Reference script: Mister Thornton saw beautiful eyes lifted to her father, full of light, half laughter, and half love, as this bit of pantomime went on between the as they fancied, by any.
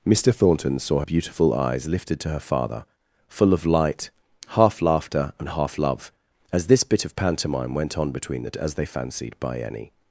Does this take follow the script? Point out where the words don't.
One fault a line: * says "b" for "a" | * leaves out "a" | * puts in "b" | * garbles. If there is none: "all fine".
all fine